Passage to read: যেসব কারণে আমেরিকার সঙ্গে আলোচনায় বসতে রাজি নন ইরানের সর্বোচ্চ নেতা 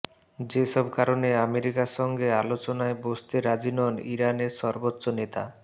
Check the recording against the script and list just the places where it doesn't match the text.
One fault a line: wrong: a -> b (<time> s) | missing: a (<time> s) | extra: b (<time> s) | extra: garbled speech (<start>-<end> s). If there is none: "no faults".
no faults